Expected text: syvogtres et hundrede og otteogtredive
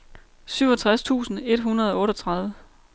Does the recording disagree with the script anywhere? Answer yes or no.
yes